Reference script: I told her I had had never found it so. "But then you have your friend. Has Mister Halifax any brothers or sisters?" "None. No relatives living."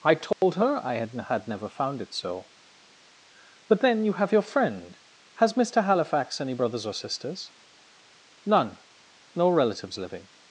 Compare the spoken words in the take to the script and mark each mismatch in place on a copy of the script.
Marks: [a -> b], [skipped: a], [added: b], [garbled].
I told her I had had never found it so. "But then you have your friend. Has Mister Halifax any brothers or sisters?" "None. No relatives living."